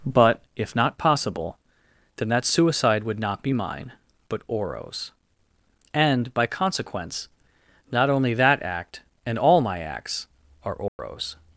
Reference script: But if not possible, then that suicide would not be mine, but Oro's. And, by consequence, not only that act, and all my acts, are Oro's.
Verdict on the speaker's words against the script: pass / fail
pass